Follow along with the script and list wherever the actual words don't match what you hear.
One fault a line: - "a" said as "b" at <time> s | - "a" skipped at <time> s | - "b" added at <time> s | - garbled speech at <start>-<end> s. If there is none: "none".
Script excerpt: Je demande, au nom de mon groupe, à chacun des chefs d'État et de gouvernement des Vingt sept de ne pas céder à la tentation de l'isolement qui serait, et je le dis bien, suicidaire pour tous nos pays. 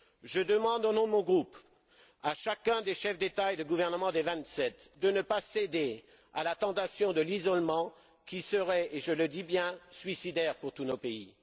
none